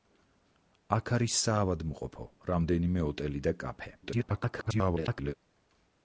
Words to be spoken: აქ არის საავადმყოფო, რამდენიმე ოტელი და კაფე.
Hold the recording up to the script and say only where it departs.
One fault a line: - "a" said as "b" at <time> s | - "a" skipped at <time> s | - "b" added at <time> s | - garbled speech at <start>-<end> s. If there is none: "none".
- garbled speech at 4.0-5.3 s